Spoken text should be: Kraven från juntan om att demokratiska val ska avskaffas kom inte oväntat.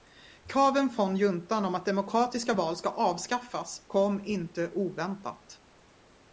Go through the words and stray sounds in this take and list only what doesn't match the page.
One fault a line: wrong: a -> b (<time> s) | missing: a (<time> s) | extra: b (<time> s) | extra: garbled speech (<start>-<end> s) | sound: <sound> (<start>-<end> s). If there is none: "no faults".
no faults